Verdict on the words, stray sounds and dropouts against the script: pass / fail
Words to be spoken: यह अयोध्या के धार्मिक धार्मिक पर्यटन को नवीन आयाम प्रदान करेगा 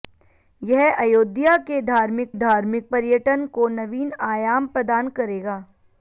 pass